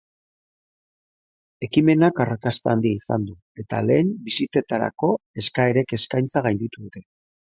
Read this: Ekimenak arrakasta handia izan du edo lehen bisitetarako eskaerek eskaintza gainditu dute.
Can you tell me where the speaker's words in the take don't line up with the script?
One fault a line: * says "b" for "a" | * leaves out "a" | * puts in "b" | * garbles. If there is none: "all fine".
* says "eta" for "edo"